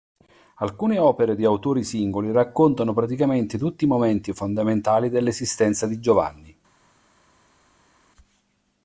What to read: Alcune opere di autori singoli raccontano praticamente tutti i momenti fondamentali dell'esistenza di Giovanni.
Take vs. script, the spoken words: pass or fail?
pass